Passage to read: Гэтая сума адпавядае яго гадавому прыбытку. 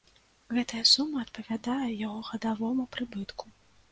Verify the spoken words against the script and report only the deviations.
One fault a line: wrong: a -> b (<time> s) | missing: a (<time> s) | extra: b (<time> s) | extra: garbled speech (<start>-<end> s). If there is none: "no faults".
no faults